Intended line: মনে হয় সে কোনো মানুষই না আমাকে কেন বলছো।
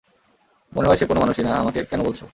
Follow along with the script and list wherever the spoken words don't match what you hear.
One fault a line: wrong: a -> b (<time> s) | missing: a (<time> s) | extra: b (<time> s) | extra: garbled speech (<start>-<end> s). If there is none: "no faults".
no faults